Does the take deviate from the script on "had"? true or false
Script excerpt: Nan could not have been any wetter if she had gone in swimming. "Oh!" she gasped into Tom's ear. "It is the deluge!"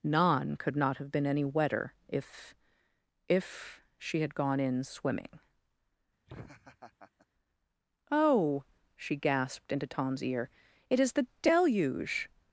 false